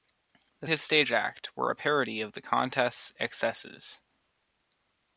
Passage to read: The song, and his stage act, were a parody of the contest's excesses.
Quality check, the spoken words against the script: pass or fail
fail